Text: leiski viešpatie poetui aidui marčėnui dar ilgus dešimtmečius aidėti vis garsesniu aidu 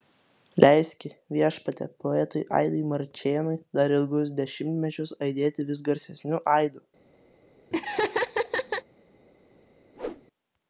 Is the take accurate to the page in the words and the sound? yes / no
no